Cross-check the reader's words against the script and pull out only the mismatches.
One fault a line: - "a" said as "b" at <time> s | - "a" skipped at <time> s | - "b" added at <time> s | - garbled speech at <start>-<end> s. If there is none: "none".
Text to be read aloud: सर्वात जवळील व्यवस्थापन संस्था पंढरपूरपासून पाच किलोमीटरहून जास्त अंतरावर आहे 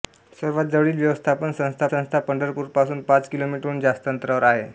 - "संस्था" added at 1.9 s